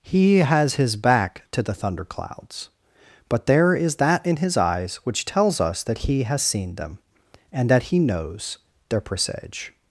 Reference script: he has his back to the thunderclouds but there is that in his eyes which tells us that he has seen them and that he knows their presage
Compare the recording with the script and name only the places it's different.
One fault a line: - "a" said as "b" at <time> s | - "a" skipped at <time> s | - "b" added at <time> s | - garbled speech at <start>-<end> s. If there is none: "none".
none